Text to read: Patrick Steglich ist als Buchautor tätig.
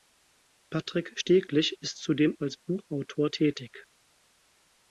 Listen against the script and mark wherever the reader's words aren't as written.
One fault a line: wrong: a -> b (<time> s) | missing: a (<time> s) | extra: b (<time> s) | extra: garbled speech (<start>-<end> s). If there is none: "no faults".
extra: zudem (2.0 s)